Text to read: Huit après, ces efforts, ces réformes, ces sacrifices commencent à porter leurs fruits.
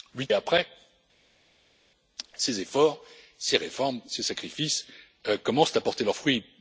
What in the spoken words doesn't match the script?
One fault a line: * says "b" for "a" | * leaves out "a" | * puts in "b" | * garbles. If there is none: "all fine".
all fine